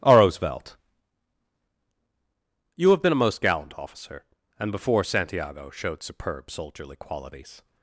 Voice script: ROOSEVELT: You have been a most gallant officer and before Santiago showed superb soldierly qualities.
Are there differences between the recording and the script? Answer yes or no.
no